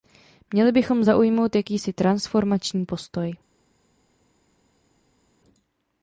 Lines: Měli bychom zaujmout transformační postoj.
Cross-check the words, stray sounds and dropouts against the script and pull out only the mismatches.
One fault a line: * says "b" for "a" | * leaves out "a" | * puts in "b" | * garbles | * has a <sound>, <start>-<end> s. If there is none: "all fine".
* puts in "jakýsi"